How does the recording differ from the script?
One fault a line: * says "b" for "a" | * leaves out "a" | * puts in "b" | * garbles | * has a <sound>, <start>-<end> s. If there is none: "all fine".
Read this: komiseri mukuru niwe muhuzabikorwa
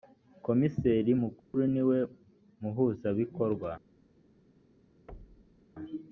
* has a dropout, 1.4-1.5 s
* has a thud, 5.1-5.7 s